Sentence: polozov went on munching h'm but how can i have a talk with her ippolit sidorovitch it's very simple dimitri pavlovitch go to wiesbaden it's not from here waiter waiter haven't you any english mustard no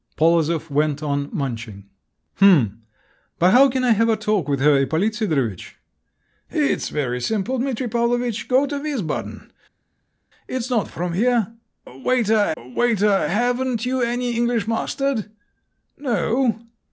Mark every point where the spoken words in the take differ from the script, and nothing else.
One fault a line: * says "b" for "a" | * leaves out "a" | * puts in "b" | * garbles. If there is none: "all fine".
all fine